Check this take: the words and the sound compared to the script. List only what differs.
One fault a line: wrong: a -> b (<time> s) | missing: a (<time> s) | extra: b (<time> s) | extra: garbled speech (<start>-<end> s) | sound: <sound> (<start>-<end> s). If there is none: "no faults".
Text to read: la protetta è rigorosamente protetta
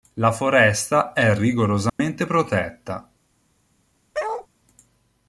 wrong: protetta -> foresta (0.3 s)
sound: dropout (1.9-2.0 s)
sound: bark (4.1-4.5 s)